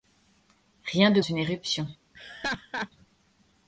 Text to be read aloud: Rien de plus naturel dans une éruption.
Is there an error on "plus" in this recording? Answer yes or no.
yes